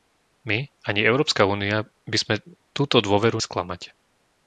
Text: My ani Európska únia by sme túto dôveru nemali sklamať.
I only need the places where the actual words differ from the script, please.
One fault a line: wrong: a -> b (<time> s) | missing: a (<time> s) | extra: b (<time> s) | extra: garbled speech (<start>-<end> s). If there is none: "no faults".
missing: nemali (3.4 s)